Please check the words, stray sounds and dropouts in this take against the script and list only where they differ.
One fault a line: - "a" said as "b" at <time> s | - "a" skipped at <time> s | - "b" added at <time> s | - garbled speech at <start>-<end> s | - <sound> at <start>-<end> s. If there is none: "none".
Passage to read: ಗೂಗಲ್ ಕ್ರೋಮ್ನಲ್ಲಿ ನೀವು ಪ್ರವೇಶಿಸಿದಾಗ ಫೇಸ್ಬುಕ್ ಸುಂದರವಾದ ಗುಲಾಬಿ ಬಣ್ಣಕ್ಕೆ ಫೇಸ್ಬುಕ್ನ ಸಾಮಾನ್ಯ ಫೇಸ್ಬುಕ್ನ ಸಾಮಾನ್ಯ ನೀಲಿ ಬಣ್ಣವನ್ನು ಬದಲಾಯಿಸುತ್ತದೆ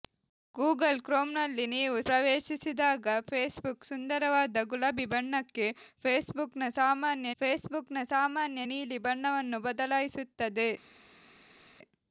none